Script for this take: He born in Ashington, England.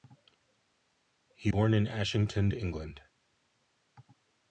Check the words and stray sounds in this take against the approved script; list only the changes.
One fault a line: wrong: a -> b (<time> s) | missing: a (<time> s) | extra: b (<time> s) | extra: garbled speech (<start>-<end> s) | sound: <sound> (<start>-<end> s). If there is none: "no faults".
no faults